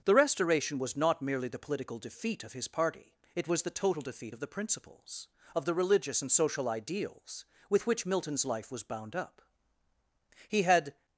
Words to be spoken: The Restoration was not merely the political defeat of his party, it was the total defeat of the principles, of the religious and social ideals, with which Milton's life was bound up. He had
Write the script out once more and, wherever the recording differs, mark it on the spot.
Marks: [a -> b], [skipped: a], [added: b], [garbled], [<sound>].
The Restoration was not merely the political defeat of his party, it was the total defeat of the principles, of the religious and social ideals, with which Milton's life was bound up. He had